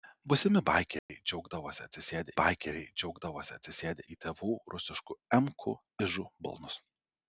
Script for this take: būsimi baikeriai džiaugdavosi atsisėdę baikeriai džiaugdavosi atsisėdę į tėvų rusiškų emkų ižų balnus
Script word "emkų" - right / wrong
right